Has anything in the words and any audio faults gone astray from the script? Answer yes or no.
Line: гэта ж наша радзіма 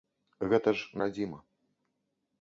yes